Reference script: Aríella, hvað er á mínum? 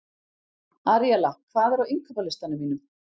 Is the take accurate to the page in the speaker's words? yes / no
no